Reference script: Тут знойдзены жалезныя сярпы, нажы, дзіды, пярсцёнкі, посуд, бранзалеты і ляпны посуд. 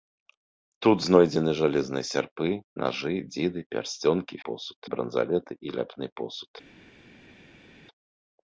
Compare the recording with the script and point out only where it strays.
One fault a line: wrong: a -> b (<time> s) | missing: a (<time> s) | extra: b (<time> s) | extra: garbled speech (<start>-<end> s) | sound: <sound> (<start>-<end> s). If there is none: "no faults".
no faults